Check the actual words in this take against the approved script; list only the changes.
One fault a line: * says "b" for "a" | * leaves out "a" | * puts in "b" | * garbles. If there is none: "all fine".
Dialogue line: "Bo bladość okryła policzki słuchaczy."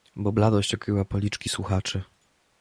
all fine